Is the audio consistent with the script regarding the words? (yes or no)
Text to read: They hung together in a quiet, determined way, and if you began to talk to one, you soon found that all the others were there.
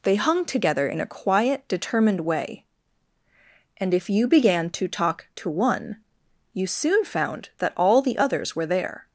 yes